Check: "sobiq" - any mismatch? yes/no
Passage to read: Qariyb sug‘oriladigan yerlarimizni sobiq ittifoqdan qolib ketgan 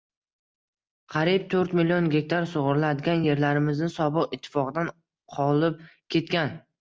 no